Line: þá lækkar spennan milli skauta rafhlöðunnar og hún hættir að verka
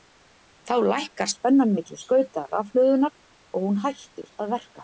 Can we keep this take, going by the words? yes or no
yes